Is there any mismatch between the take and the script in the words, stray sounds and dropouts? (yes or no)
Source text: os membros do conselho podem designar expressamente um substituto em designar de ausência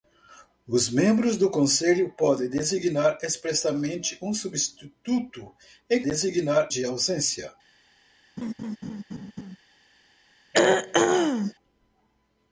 yes